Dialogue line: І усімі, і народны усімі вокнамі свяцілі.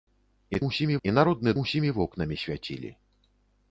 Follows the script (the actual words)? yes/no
yes